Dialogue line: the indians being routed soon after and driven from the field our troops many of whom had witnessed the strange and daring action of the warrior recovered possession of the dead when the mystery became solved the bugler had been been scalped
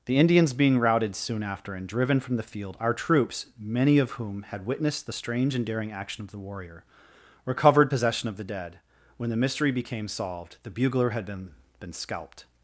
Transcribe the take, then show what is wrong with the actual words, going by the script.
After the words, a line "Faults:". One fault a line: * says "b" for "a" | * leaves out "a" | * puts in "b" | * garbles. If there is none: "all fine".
the indians being routed soon after and driven from the field our troops many of whom had witnessed the strange and daring action of the warrior recovered possession of the dead when the mystery became solved the bugler had been been scalped
Faults:
all fine